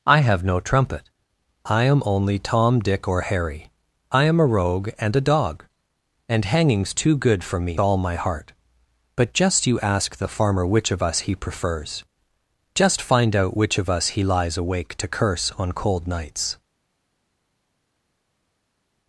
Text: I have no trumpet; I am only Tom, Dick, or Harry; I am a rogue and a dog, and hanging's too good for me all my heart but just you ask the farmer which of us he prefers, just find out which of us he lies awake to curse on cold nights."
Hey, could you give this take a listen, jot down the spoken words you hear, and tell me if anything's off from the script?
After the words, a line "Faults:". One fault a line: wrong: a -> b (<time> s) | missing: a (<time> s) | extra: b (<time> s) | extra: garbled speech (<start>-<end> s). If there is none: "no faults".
I have no trumpet; I am only Tom, Dick, or Harry; I am a rogue and a dog, and hanging's too good for me all my heart but just you ask the farmer which of us he prefers, just find out which of us he lies awake to curse on cold nights."
Faults:
no faults